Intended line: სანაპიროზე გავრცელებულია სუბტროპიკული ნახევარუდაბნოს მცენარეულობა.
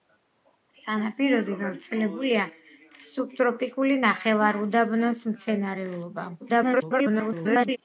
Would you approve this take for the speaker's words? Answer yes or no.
no